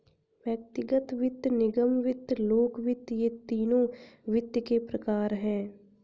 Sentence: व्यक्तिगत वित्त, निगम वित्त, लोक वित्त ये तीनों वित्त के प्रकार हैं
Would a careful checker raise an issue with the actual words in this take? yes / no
no